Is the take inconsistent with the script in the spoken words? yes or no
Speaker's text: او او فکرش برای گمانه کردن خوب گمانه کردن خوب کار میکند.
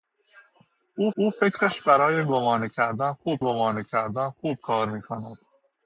no